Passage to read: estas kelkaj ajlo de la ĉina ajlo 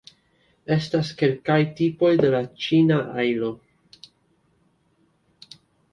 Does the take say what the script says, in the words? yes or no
no